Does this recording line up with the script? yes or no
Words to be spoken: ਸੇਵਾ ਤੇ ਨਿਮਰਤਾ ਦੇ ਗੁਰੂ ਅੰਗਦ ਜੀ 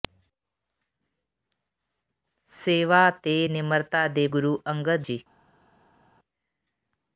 yes